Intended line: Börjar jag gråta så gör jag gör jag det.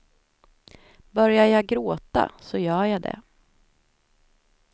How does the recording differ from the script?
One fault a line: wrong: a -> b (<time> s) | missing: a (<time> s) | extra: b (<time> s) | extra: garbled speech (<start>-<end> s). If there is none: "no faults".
missing: gör jag (3.0 s)